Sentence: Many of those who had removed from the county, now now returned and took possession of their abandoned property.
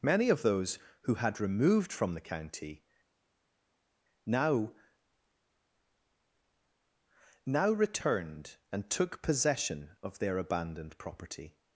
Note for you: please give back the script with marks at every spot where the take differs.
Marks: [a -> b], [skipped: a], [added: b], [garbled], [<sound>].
Many of those who had removed from the county, now now returned and took possession of their abandoned property.